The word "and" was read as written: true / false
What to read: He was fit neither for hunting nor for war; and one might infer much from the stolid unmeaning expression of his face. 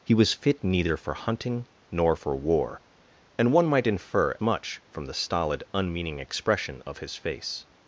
true